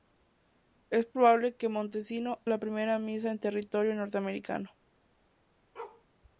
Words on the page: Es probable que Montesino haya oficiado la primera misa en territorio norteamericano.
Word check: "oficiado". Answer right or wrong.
wrong